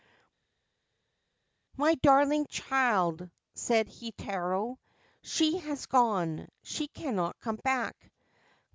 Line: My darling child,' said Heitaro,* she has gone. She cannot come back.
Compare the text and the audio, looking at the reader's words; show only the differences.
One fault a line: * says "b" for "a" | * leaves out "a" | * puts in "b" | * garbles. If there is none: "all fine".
all fine